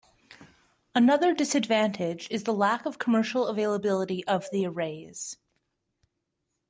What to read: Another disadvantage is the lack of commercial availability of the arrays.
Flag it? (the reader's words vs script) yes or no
no